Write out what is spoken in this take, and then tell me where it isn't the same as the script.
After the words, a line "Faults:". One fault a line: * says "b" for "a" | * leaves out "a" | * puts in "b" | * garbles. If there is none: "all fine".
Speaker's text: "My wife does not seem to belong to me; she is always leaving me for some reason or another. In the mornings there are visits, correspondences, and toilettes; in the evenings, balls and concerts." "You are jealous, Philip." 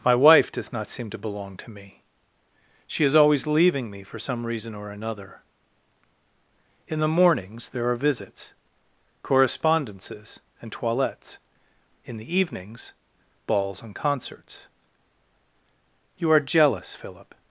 "My wife does not seem to belong to me; she is always leaving me for some reason or another. In the mornings there are visits, correspondences, and toilettes; in the evenings, balls and concerts." "You are jealous, Philip."
Faults:
all fine